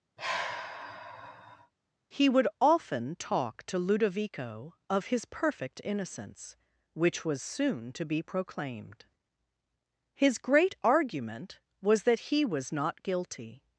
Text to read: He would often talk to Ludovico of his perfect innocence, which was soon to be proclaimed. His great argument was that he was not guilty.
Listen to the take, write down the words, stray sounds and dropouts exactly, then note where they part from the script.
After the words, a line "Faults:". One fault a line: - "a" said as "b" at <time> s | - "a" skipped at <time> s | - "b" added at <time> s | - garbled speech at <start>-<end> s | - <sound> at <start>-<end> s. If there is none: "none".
He would often talk to Ludovico of his perfect innocence, which was soon to be proclaimed. His great argument was that he was not guilty.
Faults:
- sigh at 0.2-1.7 s